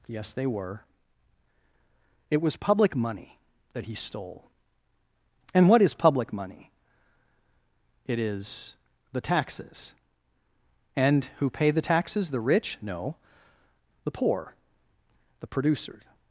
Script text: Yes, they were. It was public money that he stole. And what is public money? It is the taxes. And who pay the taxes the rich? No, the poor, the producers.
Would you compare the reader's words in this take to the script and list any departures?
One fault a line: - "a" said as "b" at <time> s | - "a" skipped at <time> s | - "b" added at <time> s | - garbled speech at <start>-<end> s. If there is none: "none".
none